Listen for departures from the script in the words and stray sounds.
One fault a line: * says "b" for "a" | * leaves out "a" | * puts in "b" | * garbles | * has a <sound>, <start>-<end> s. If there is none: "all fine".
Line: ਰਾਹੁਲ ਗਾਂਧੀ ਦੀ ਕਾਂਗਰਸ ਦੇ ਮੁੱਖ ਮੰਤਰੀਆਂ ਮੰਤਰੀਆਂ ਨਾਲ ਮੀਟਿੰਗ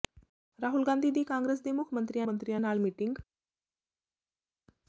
all fine